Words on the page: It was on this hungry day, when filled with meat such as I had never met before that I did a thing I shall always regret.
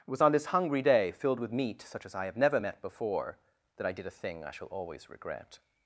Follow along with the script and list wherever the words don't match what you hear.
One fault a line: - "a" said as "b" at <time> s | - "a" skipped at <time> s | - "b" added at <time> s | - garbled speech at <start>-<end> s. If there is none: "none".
- "when" skipped at 1.1 s
- "had" said as "have" at 2.2 s